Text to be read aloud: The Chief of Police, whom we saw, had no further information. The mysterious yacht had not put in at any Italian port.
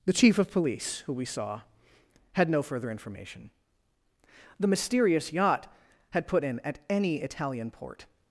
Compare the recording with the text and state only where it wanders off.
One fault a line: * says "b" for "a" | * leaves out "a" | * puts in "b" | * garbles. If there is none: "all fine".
* says "who" for "whom"
* leaves out "not"